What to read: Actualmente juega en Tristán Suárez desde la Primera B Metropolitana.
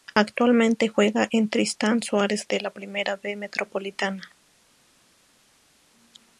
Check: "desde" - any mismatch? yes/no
yes